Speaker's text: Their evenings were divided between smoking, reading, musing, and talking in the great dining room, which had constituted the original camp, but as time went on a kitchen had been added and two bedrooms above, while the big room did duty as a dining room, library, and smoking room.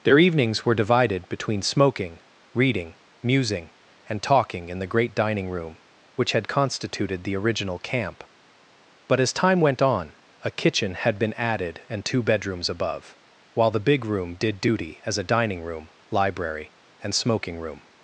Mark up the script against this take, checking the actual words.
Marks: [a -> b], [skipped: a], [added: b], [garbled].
Their evenings were divided between smoking, reading, musing, and talking in the great dining room, which had constituted the original camp, but as time went on a kitchen had been added and two bedrooms above, while the big room did duty as a dining room, library, and smoking room.